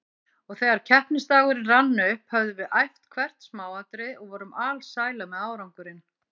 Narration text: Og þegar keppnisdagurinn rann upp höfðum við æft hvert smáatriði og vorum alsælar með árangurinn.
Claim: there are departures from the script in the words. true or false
false